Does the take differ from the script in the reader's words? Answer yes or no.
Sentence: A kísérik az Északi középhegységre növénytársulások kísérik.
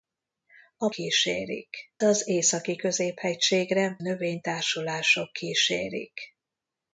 no